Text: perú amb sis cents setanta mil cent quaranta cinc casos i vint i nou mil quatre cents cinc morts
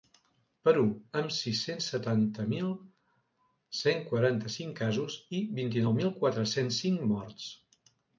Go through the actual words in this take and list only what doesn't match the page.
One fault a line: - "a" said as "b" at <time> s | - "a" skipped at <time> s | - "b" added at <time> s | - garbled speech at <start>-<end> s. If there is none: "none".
none